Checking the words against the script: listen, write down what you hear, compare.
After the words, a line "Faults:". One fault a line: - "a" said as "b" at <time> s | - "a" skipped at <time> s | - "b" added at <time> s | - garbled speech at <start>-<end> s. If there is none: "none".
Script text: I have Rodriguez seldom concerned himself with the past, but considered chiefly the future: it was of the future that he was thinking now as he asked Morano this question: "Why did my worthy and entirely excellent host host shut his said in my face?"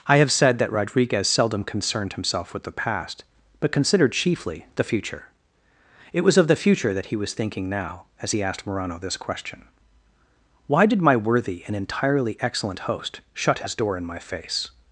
I have said that Rodriguez seldom concerned himself with the past, but considered chiefly the future: it was of the future that he was thinking now as he asked Morano this question: "Why did my worthy and entirely excellent host shut his door in my face?"
Faults:
- "said that" added at 0.3 s
- "host" skipped at 13.2 s
- "said" said as "door" at 13.7 s